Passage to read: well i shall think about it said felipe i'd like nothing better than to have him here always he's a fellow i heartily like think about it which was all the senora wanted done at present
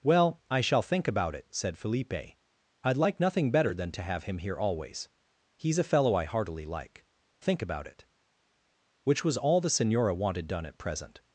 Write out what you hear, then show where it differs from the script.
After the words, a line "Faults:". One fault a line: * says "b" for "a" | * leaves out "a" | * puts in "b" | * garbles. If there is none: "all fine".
well i shall think about it said felipe i'd like nothing better than to have him here always he's a fellow i heartily like think about it which was all the senora wanted done at present
Faults:
all fine